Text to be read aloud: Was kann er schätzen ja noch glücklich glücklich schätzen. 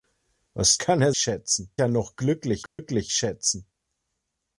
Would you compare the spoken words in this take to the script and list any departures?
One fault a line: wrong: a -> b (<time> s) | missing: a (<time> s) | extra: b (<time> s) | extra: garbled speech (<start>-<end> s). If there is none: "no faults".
no faults